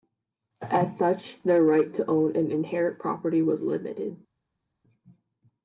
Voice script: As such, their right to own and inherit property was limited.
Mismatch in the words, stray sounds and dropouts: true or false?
false